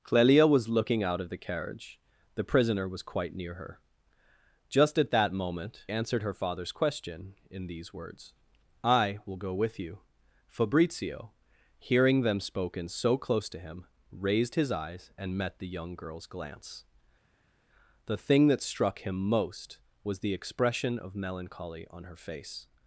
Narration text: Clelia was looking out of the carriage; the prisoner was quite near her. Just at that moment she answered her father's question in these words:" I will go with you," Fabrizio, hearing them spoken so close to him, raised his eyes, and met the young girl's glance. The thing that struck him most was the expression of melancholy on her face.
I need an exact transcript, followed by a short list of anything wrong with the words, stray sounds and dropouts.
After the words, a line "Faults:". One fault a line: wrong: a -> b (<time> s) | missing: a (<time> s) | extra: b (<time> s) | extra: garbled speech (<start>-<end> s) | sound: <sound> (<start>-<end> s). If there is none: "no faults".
Clelia was looking out of the carriage; the prisoner was quite near her. Just at that moment answered her father's question in these words:" I will go with you," Fabrizio, hearing them spoken so close to him, raised his eyes, and met the young girl's glance. The thing that struck him most was the expression of melancholy on her face.
Faults:
missing: she (5.8 s)